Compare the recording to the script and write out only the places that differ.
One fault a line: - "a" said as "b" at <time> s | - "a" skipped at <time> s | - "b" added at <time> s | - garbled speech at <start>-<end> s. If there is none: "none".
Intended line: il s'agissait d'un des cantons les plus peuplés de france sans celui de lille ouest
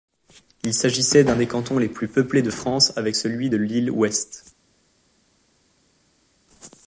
- "sans" said as "avec" at 3.0 s